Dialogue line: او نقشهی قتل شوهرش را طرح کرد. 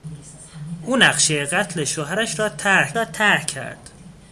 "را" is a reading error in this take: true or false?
false